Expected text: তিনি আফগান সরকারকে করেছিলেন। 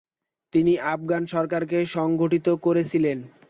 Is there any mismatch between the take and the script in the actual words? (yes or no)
yes